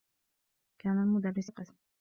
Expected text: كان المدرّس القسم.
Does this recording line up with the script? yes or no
yes